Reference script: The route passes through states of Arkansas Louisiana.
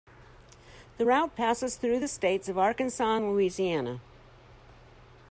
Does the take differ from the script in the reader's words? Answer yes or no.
yes